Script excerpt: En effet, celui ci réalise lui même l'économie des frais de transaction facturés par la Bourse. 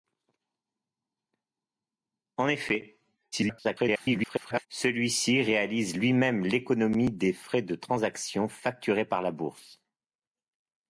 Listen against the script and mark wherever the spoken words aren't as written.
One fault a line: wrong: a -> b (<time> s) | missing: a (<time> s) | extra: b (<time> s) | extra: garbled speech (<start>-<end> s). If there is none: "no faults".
extra: garbled speech (3.3-4.7 s)